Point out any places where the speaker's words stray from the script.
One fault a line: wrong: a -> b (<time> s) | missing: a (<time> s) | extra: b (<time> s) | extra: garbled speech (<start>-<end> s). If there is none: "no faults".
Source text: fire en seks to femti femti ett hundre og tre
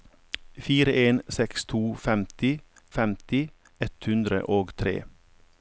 no faults